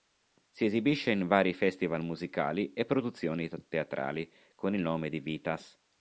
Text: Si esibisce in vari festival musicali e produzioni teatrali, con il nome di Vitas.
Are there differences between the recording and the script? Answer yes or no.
no